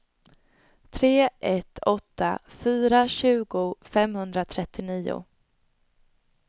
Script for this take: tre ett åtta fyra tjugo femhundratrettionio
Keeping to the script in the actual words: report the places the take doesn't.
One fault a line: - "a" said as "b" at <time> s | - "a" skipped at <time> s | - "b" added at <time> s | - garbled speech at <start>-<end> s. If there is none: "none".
none